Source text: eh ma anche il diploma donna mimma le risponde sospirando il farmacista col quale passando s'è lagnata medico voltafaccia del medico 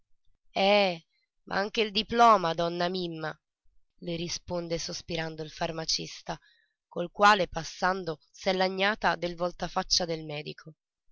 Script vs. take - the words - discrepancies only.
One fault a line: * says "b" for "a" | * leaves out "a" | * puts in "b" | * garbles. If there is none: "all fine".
* says "del" for "medico"